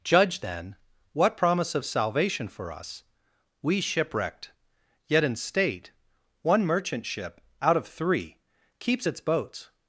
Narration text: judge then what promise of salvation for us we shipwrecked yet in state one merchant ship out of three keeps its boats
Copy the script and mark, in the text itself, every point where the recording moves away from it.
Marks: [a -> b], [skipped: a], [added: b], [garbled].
judge then what promise of salvation for us we shipwrecked yet in state one merchant ship out of three keeps its boats